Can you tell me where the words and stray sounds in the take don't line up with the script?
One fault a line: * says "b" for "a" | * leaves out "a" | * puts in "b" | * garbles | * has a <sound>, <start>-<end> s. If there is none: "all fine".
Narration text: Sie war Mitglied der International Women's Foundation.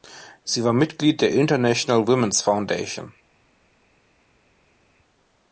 all fine